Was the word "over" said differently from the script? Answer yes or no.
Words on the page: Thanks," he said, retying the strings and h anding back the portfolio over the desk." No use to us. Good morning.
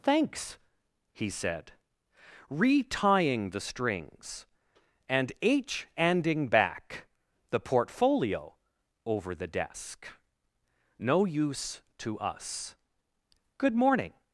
no